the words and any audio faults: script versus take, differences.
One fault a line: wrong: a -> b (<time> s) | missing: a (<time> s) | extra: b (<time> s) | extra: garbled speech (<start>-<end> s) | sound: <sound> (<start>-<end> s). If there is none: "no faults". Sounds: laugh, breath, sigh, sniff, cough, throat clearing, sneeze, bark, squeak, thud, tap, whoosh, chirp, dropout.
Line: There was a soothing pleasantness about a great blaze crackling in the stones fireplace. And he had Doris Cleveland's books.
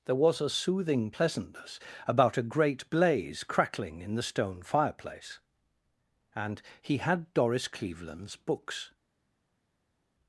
wrong: stones -> stone (4.2 s)